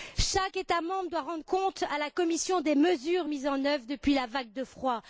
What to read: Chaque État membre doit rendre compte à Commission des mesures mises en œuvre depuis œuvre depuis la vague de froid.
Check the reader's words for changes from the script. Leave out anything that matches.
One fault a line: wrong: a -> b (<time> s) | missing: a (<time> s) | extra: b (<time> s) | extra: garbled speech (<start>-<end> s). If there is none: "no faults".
extra: la (2.0 s)
missing: œuvre depuis (4.1 s)